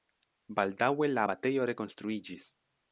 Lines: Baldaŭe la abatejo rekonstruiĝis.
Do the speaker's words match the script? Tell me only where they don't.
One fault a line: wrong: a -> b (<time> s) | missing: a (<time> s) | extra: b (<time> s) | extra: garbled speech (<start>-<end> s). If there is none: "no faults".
no faults